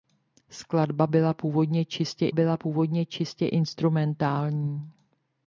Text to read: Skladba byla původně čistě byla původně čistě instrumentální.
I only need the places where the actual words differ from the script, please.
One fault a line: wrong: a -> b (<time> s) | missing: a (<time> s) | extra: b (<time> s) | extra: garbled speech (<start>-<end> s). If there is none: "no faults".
no faults